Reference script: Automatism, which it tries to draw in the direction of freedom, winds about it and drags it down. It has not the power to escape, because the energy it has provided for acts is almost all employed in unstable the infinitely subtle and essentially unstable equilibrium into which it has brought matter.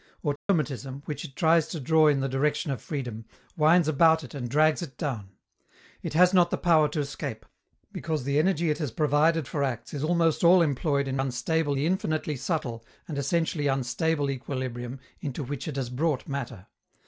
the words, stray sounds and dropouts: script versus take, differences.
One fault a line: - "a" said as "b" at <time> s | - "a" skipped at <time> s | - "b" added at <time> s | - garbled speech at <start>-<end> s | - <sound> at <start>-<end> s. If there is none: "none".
- dropout at 0.4-0.5 s